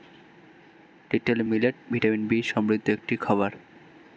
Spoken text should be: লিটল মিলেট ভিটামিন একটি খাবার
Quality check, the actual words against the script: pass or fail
fail